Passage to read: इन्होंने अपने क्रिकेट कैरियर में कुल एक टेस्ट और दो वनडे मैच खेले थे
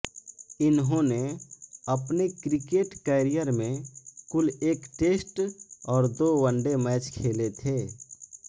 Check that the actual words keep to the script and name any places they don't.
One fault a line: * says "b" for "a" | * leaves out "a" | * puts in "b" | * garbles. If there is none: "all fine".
all fine